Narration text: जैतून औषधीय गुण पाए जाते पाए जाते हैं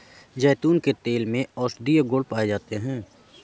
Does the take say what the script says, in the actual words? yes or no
no